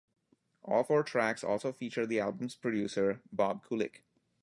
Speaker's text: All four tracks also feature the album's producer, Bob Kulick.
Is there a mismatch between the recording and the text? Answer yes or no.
no